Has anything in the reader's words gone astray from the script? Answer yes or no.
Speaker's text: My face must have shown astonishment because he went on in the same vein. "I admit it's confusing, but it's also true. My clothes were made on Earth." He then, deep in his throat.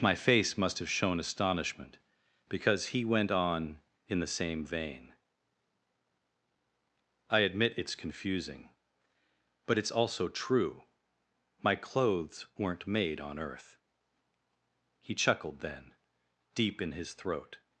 yes